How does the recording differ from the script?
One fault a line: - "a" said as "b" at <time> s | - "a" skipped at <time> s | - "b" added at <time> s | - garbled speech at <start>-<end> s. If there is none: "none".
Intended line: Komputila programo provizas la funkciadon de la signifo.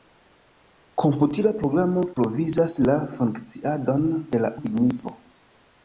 none